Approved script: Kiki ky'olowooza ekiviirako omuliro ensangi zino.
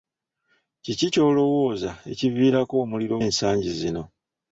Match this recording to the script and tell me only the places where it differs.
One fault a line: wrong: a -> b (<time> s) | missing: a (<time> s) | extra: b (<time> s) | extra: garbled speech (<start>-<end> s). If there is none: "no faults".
no faults